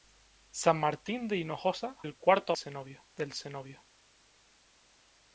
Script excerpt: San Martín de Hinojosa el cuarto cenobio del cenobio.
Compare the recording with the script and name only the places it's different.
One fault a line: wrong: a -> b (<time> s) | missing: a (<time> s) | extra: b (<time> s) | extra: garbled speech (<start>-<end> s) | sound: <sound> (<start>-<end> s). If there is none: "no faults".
no faults